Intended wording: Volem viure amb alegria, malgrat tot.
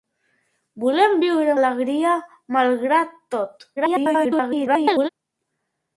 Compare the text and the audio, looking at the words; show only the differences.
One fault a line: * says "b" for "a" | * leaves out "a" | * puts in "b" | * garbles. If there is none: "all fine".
* leaves out "amb"
* garbles